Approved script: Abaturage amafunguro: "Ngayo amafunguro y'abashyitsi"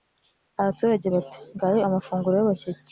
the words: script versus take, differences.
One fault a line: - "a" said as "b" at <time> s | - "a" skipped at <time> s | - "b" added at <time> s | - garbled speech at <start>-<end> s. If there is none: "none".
- "amafunguro" said as "bati" at 1.1 s